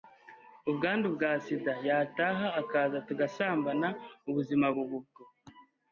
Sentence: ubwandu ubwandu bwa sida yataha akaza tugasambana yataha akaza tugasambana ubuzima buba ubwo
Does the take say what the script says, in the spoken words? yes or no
no